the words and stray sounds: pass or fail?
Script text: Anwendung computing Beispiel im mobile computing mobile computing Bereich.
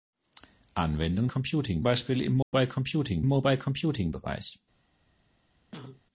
fail